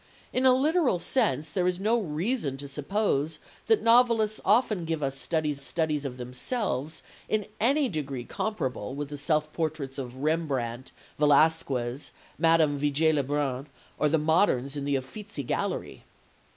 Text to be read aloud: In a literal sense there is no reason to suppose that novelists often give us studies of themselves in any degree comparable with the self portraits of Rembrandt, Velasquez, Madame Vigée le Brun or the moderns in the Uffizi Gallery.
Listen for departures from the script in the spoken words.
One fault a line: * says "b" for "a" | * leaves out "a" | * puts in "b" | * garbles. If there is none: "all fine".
* puts in "studies"